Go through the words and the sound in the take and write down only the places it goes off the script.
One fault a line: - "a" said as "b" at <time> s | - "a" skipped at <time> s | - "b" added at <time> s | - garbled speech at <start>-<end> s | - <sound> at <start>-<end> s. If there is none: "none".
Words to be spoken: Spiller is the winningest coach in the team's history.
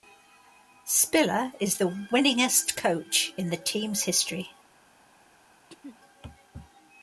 - throat clearing at 5.7-6.0 s